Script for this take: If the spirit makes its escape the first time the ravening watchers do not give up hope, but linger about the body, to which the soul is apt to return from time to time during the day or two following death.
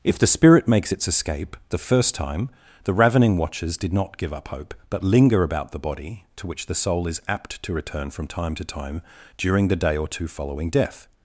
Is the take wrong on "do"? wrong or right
wrong